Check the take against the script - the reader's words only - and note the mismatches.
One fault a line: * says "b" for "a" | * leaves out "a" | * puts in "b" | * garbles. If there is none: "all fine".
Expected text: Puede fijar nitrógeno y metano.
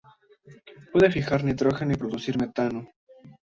* puts in "producir"